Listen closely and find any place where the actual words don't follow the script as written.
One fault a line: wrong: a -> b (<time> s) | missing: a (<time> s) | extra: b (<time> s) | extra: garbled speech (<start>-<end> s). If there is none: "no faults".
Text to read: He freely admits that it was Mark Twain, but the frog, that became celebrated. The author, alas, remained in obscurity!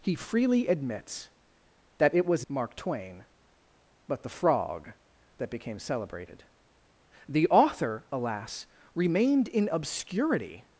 no faults